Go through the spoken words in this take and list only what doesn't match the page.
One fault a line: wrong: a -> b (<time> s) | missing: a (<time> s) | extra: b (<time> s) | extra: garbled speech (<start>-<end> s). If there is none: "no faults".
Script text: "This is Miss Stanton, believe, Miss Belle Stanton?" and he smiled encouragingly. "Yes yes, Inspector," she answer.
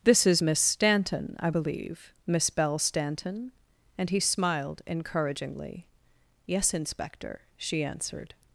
extra: I (1.4 s)
missing: yes (6.7 s)
wrong: answer -> answered (7.8 s)